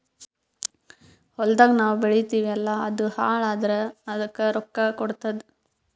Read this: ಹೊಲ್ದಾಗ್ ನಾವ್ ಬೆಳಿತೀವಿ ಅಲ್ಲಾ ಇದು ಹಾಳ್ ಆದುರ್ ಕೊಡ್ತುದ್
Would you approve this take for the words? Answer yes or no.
no